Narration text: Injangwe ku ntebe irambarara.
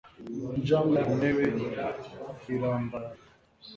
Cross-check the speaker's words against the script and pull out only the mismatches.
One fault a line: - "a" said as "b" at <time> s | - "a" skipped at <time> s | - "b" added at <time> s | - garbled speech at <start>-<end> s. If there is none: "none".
none